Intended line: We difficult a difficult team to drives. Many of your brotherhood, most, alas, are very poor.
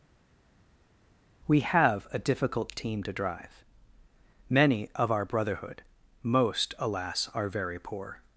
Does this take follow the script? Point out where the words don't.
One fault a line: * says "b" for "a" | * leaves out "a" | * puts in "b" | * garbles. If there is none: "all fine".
* says "have" for "difficult"
* says "drive" for "drives"
* says "our" for "your"